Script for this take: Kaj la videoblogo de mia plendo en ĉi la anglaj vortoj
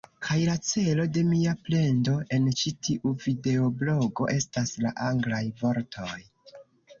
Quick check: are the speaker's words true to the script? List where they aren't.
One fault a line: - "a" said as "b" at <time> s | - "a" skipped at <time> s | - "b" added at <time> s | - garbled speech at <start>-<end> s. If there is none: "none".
- "videoblogo" said as "celo" at 0.7 s
- "tiu videoblogo estas" added at 2.9 s